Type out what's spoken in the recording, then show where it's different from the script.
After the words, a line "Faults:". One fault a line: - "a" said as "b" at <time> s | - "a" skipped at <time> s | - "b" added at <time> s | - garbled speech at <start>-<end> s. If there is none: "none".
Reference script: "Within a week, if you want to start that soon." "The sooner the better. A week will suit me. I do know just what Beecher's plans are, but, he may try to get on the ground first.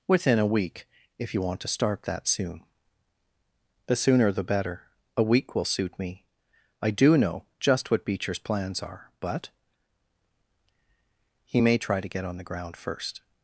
"Within a week, if you want to start that soon." "The sooner the better. A week will suit me. I do know just what Beecher's plans are, but, he may try to get on the ground first.
Faults:
none